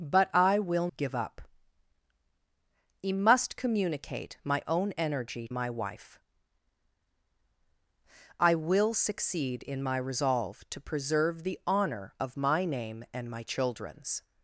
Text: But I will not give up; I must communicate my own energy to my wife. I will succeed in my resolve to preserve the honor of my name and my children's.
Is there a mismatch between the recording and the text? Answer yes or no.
yes